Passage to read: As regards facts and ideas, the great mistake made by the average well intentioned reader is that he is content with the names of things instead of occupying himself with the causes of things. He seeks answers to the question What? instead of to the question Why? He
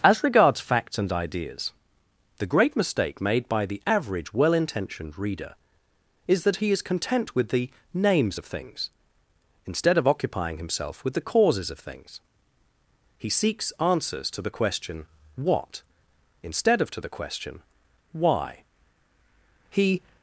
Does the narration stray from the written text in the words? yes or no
no